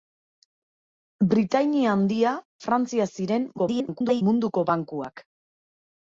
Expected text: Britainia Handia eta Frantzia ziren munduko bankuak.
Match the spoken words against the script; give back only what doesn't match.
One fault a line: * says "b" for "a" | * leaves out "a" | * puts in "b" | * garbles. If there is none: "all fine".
* leaves out "eta"
* garbles